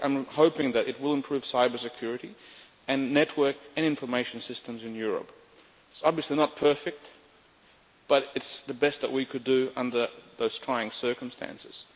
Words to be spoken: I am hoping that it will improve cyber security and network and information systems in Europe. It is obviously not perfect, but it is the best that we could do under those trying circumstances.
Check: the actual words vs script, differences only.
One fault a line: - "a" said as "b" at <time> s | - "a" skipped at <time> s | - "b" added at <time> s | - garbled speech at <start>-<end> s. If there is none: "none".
none